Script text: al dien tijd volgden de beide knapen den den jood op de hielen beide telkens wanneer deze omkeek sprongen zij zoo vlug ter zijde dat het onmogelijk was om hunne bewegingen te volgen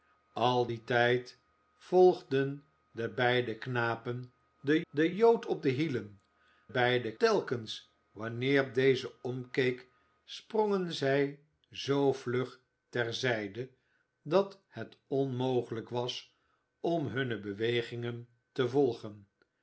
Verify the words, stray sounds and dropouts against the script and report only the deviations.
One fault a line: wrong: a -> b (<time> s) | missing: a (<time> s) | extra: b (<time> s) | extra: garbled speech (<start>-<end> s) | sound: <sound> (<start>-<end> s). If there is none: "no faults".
no faults